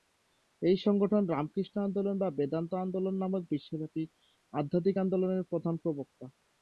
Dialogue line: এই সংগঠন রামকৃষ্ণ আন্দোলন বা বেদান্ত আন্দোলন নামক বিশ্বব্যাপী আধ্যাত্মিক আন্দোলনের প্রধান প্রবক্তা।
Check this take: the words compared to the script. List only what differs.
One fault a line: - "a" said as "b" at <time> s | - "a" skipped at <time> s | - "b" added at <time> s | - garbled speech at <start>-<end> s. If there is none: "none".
none